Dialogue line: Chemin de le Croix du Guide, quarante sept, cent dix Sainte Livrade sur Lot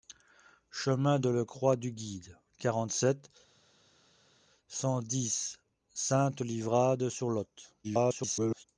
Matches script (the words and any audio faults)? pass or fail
fail